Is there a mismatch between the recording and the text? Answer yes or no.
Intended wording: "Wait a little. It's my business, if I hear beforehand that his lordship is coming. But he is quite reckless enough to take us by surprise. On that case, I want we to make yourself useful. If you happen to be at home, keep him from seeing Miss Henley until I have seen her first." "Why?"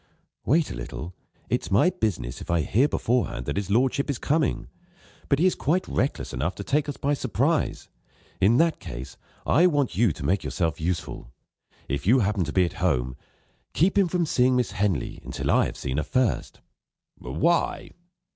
yes